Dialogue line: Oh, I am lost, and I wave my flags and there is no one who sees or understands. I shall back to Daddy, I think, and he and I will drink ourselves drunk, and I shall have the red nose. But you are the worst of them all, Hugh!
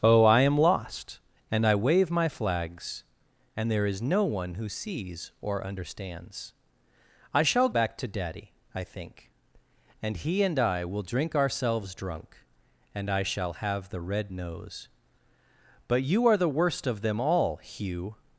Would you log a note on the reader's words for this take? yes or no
no